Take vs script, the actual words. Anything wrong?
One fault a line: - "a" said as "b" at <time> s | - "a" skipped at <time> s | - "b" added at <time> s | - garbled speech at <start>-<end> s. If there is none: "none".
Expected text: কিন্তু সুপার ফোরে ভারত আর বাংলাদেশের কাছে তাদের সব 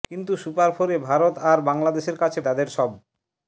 none